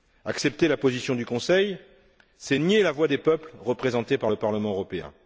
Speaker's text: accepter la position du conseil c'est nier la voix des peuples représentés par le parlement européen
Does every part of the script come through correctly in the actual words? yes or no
yes